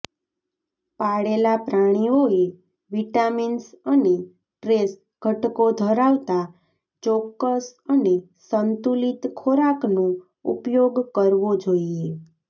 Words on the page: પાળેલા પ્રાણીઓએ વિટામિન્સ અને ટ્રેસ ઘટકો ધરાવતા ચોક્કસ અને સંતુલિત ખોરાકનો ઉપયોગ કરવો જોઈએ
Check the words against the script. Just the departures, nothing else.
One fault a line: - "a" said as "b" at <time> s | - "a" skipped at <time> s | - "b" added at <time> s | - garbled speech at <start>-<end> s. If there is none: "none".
none